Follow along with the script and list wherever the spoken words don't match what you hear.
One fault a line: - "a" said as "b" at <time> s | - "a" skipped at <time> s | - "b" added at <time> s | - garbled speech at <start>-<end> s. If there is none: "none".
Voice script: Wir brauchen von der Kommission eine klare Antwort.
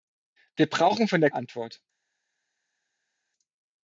- "Kommission eine klare" skipped at 1.3 s